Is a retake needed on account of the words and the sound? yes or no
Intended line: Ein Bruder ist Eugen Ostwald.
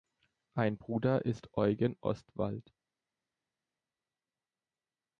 no